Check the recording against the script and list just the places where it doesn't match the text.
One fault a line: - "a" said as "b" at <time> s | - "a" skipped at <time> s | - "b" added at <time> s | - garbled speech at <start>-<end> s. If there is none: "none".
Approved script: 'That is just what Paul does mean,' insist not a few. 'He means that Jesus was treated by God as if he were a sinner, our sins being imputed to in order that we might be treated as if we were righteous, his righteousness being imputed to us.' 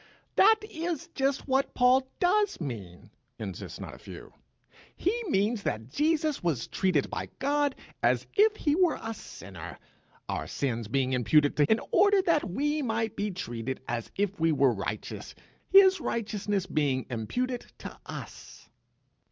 none